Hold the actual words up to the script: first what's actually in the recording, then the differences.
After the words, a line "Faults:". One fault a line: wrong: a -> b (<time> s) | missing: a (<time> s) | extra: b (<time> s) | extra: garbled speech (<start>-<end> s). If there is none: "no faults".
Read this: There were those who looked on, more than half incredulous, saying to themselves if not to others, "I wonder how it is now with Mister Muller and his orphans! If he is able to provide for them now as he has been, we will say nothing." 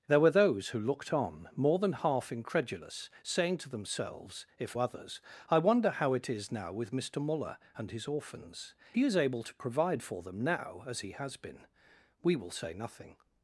There were those who looked on, more than half incredulous, saying to themselves if others, "I wonder how it is now with Mister Muller and his orphans! He is able to provide for them now as he has been, we will say nothing."
Faults:
missing: not to (4.8 s)
missing: If (8.7 s)